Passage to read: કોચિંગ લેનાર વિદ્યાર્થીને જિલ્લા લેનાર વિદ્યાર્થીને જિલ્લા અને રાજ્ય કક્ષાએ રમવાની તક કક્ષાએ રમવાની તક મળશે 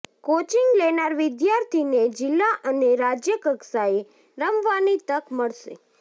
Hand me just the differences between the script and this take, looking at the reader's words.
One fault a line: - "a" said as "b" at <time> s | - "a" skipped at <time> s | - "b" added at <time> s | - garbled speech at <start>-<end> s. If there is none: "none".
- "લેનાર વિદ્યાર્થીને જિલ્લા" skipped at 2.5 s
- "કક્ષાએ રમવાની તક" skipped at 5.2 s